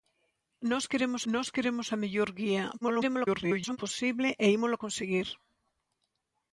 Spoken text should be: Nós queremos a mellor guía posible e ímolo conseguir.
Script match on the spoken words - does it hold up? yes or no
no